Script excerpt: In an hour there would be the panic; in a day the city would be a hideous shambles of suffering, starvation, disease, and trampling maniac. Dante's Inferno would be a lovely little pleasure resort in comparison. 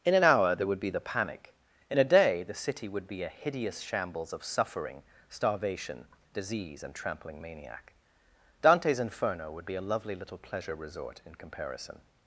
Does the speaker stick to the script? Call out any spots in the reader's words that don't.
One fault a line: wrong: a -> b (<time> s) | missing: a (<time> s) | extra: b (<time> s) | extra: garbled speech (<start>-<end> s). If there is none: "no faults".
no faults